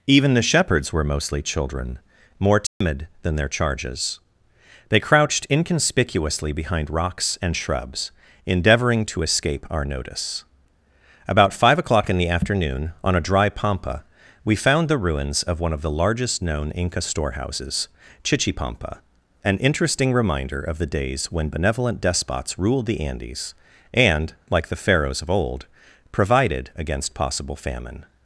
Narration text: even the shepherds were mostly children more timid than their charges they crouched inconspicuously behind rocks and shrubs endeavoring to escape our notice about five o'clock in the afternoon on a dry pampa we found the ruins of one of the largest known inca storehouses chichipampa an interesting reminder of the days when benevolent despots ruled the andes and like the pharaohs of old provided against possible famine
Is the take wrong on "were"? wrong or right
right